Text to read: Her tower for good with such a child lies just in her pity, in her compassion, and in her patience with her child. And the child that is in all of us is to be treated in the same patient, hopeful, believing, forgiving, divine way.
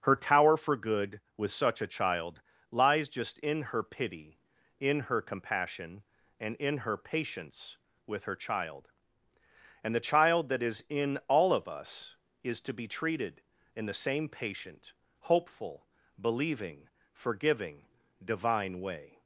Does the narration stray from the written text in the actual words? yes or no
no